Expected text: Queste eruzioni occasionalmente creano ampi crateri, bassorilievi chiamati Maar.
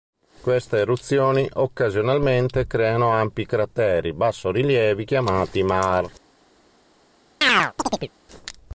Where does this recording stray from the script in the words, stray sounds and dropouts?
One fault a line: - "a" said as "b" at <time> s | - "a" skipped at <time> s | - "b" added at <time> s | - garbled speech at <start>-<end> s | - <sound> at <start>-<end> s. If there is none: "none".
- chirp at 7.4-8.1 s